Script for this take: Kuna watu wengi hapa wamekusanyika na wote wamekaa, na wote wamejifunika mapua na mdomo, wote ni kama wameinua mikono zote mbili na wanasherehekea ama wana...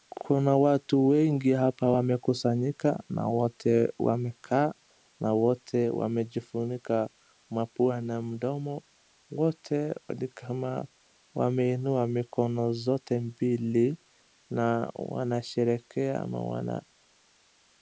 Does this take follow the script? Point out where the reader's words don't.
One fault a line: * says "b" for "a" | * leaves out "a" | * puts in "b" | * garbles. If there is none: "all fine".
all fine